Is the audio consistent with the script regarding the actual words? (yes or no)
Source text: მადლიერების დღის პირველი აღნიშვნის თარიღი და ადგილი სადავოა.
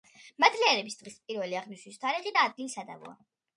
yes